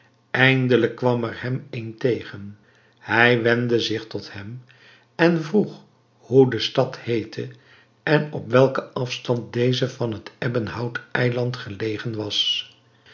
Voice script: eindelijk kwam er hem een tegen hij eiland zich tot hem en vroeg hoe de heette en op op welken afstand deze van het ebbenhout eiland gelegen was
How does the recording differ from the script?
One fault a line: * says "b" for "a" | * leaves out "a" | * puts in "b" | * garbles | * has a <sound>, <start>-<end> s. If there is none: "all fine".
* says "wendde" for "eiland"
* puts in "stad"
* leaves out "op"